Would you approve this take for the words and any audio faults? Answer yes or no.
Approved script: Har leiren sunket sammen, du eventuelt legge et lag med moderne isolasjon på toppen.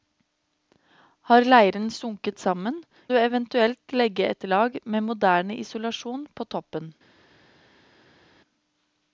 yes